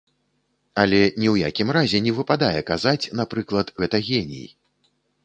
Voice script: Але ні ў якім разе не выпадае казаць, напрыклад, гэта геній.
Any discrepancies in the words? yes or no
no